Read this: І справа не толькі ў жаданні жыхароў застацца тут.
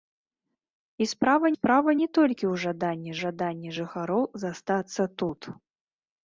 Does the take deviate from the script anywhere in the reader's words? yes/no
yes